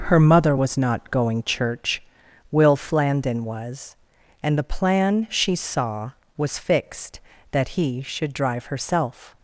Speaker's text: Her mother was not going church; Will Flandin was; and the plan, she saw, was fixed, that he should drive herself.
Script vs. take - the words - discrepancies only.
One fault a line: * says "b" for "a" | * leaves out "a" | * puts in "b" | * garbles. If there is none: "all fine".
all fine